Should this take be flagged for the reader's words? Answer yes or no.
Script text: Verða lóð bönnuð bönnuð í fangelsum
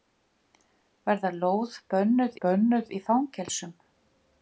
no